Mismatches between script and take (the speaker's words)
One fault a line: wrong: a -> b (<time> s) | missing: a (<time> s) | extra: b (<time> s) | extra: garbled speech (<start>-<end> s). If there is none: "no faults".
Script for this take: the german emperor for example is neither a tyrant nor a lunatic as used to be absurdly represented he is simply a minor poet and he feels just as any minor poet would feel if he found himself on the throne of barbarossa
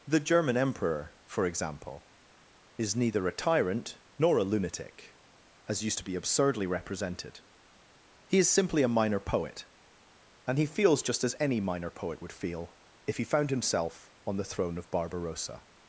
no faults